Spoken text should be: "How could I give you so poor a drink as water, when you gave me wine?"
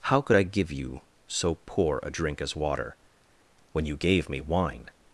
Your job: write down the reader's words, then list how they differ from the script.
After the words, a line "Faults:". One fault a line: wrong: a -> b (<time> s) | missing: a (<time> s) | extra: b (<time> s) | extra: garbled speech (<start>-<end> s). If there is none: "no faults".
"How could I give you so poor a drink as water, when you gave me wine?"
Faults:
no faults